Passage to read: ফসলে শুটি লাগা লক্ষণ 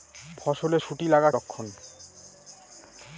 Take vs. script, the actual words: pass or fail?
pass